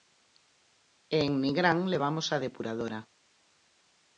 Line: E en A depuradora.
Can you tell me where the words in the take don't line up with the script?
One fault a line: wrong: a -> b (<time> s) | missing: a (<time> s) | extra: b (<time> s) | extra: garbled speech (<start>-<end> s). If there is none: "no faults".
extra: Nigrán levamos (1.4 s)